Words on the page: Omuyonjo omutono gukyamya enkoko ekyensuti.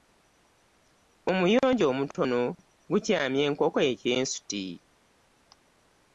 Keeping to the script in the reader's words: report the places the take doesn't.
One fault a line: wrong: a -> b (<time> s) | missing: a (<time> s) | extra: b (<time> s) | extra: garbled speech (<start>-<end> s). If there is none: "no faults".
no faults